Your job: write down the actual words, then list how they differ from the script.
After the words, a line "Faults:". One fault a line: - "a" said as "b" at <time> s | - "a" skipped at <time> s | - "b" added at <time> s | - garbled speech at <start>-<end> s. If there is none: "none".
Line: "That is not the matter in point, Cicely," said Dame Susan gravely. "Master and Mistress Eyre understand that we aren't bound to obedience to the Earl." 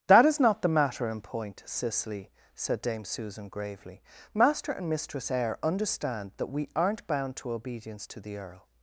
"That is not the matter in point, Cicely," said Dame Susan gravely. "Master and Mistress Eyre understand that we aren't bound to obedience to the Earl."
Faults:
none